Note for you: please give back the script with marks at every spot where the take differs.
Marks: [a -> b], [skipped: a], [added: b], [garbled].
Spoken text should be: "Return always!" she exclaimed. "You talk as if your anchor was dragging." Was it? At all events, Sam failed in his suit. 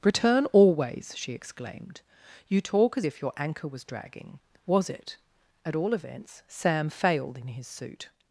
"Return always!" she exclaimed. "You talk as if your anchor was dragging." Was it? At all events, Sam failed in his suit.